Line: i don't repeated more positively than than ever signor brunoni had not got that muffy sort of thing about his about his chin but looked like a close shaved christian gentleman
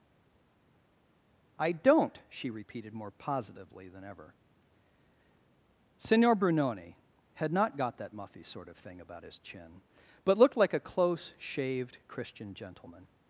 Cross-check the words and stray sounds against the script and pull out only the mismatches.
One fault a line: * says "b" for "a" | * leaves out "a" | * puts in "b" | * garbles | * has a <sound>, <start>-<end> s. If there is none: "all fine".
* puts in "she"
* leaves out "than"
* leaves out "about his"